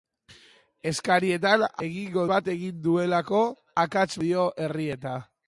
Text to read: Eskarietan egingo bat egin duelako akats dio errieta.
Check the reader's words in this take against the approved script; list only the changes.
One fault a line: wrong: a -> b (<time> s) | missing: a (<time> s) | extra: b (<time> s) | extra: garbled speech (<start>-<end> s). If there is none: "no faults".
no faults